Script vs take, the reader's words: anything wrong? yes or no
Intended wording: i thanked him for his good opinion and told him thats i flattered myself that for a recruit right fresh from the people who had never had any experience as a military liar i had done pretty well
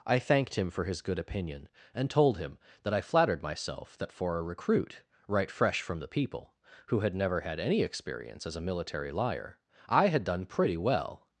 yes